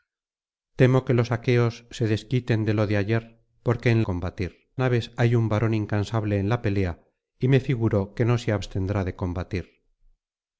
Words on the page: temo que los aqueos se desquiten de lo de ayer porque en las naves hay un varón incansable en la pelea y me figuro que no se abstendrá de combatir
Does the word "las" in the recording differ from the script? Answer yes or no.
yes